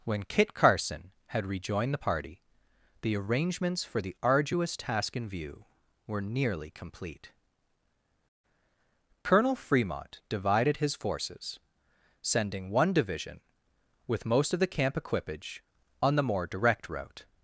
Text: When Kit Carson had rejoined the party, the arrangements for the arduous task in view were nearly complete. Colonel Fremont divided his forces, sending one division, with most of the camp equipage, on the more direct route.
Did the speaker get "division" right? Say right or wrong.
right